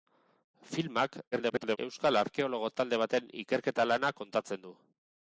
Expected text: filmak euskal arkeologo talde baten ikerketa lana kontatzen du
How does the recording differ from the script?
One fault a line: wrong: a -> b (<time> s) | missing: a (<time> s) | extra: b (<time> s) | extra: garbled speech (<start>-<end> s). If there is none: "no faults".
extra: garbled speech (1.3-1.8 s)